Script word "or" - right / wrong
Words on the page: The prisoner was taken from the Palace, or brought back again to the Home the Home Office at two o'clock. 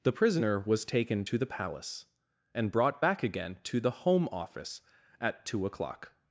wrong